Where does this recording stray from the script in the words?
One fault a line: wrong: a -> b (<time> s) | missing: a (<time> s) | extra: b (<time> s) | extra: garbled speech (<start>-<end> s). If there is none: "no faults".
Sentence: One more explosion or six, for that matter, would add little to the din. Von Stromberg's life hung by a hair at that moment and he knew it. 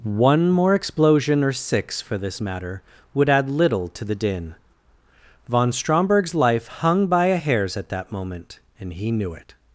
wrong: that -> this (2.2 s)
wrong: hair -> hairs (7.4 s)